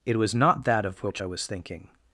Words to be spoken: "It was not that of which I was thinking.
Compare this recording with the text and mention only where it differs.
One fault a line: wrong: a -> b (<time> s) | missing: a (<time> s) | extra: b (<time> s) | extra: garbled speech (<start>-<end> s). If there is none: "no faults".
no faults